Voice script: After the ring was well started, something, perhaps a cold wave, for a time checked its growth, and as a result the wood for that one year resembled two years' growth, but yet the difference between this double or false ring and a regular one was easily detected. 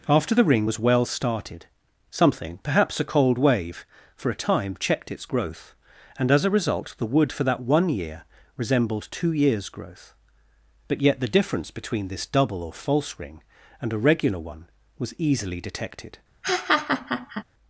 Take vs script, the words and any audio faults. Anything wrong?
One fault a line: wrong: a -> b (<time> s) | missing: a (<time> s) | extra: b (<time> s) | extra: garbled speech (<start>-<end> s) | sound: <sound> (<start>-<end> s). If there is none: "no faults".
sound: laugh (16.4-17.4 s)